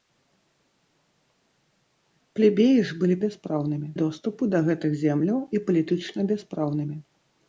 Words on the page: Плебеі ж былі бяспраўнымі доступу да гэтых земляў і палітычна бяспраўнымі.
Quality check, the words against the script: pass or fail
pass